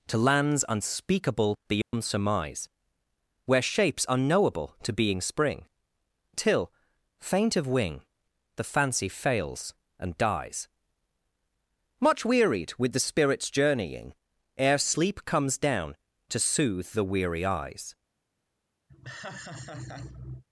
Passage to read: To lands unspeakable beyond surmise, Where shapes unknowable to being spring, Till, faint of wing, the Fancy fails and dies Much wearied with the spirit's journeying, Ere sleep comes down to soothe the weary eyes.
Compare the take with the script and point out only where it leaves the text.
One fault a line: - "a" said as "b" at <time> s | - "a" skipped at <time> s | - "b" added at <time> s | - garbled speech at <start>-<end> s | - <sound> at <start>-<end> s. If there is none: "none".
- dropout at 1.8-1.9 s
- laugh at 18.9-20.4 s